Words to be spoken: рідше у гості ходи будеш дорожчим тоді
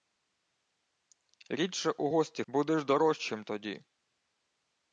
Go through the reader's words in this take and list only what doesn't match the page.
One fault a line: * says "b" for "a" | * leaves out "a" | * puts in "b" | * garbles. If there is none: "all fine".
* leaves out "ходи"